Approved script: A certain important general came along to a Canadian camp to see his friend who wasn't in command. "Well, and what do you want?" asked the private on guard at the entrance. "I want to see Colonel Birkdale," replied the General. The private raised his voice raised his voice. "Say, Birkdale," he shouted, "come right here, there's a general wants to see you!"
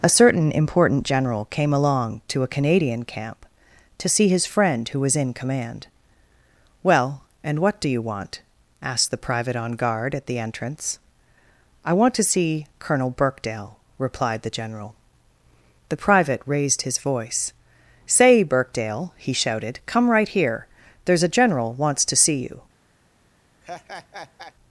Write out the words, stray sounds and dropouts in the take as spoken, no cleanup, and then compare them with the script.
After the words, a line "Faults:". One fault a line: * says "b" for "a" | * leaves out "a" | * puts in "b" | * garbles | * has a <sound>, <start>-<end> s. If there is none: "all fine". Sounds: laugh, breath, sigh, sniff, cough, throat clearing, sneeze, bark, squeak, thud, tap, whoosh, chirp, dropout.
A certain important general came along to a Canadian camp to see his friend who was in command. "Well, and what do you want?" asked the private on guard at the entrance. "I want to see Colonel Birkdale," replied the General. The private raised his voice. "Say, Birkdale," he shouted, "come right here, there's a general wants to see you!"
Faults:
* says "was" for "wasn't"
* leaves out "raised his voice"
* has a laugh, 23.6-24.5 s